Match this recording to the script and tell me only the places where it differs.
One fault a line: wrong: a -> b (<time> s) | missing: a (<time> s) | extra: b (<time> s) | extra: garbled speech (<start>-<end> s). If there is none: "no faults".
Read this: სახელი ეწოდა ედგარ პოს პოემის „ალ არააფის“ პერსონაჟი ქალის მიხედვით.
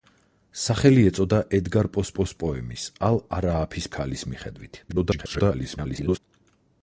extra: პოს (2.2 s)
missing: პერსონაჟი (3.9 s)
extra: garbled speech (4.9-6.2 s)